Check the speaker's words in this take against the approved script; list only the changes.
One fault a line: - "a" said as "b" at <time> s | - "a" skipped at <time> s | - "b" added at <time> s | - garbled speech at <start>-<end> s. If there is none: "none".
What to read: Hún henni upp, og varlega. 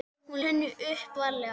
none